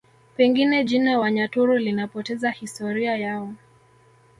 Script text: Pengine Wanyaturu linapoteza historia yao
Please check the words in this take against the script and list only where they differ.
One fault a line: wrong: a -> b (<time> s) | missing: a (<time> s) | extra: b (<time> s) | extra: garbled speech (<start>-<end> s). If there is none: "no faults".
extra: jina (0.8 s)